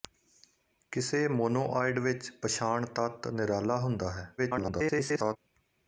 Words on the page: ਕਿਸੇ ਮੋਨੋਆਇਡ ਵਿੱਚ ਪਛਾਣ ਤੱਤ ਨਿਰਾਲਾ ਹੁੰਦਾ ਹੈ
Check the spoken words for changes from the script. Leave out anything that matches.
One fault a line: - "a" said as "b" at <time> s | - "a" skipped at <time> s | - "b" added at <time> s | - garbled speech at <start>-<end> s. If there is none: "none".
- garbled speech at 4.4-5.4 s